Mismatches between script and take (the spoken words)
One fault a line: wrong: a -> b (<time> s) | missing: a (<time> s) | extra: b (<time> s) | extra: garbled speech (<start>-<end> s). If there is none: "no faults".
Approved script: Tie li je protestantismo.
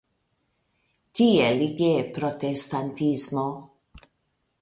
no faults